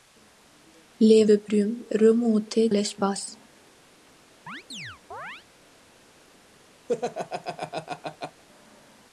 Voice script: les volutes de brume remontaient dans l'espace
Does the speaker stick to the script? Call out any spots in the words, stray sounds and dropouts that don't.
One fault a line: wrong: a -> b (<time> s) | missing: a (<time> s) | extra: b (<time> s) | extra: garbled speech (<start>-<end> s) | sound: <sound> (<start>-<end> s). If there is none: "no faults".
missing: volutes (1.2 s)
missing: dans (2.7 s)
sound: chirp (4.5-5.4 s)
sound: laugh (6.9-8.4 s)